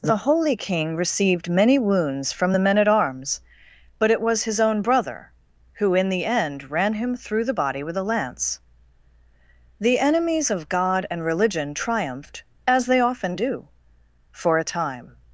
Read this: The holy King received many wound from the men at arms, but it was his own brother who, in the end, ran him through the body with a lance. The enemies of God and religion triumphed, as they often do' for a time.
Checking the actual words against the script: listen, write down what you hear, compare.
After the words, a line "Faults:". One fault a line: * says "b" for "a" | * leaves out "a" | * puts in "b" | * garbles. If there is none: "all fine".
The holy King received many wounds from the men at arms, but it was his own brother who, in the end, ran him through the body with a lance. The enemies of God and religion triumphed, as they often do' for a time.
Faults:
* says "wounds" for "wound"